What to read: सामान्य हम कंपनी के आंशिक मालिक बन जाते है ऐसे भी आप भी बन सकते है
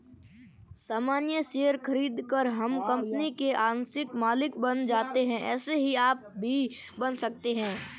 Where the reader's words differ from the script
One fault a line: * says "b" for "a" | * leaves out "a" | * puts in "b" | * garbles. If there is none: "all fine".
* puts in "शेयर खरीदकर"
* says "ही" for "भी"